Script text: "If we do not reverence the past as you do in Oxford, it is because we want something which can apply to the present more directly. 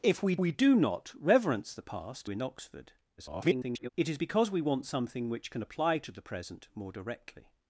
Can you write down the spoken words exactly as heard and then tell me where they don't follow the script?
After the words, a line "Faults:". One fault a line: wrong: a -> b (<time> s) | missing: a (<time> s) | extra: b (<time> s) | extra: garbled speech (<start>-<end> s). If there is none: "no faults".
"If we we do not reverence the past in Oxford, [garbled] it is because we want something which can apply to the present more directly.
Faults:
extra: we (0.4 s)
missing: as you do (2.3 s)
extra: garbled speech (3.2-3.9 s)